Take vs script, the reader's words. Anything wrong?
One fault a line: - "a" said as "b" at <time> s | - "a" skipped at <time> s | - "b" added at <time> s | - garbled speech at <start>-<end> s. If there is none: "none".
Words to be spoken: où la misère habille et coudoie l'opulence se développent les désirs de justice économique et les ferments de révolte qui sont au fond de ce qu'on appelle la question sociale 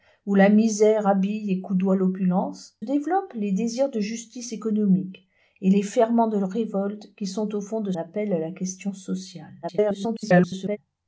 - "se" skipped at 2.8 s
- "ce qu'on" skipped at 7.9 s
- garbled speech at 9.6-10.8 s